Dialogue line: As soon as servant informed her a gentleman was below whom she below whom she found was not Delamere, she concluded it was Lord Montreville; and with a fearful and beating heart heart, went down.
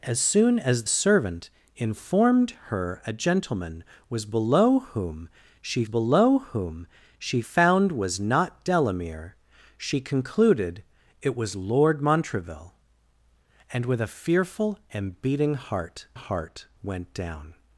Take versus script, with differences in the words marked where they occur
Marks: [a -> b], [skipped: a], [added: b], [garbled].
As soon as servant informed her a gentleman was below whom she below whom she found was not Delamere, she concluded it was Lord Montreville; and with a fearful and beating heart heart, went down.